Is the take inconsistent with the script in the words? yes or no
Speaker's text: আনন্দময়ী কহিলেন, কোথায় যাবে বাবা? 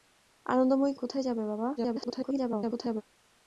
yes